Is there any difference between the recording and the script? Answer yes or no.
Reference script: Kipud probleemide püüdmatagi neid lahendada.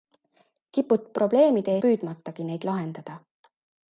no